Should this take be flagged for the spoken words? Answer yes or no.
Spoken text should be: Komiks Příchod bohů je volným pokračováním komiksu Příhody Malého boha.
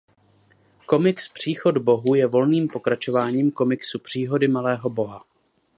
no